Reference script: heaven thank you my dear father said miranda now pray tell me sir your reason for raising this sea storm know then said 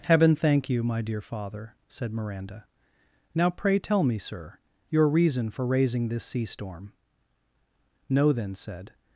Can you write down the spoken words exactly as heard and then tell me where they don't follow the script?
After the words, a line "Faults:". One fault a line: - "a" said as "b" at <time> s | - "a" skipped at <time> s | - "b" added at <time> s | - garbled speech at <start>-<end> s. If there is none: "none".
heaven thank you my dear father said miranda now pray tell me sir your reason for raising this sea storm know then said
Faults:
none